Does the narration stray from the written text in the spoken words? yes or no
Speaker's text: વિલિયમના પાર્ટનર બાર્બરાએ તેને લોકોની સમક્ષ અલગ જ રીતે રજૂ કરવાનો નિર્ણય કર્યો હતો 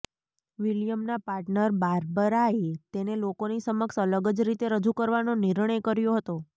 no